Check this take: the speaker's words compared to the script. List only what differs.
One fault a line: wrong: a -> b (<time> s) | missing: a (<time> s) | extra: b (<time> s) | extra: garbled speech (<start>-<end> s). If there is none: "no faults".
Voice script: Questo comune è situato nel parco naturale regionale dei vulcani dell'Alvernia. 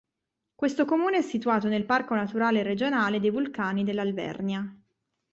no faults